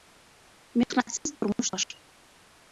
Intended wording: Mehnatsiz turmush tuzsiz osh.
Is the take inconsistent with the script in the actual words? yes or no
yes